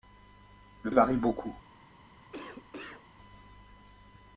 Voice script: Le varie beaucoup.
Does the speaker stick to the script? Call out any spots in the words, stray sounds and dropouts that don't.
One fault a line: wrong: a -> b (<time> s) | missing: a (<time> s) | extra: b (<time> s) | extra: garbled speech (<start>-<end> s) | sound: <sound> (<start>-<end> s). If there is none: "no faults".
sound: cough (2.3-3.1 s)